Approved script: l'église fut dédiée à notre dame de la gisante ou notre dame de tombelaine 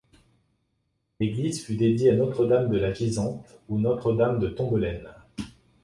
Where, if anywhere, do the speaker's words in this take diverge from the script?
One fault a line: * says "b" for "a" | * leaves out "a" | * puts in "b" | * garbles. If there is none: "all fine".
all fine